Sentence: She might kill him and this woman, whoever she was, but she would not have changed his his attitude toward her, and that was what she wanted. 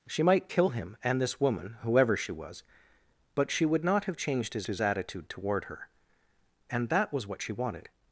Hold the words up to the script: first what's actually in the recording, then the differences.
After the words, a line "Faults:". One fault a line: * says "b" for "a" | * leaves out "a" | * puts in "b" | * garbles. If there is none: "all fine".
She might kill him and this woman, whoever she was, but she would not have changed his his attitude toward her, and that was what she wanted.
Faults:
all fine